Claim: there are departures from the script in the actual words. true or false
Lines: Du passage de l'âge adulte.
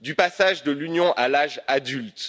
true